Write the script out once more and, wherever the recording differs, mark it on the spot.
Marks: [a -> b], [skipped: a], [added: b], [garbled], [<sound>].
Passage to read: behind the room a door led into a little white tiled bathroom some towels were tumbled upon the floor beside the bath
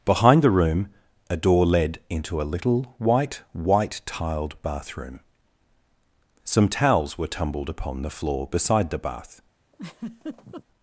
behind the room a door led into a little white [added: white] tiled bathroom some towels were tumbled upon the floor beside the bath [laugh]